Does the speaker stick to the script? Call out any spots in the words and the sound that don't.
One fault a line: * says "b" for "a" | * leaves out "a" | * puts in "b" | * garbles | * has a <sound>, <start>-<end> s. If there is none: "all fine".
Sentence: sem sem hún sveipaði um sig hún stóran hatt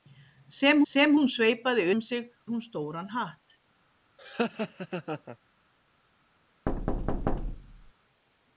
* has a laugh, 4.2-5.4 s
* has a thud, 6.7-7.9 s